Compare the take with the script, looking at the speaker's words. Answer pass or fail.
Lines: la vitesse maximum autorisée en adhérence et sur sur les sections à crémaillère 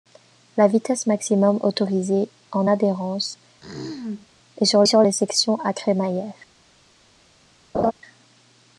pass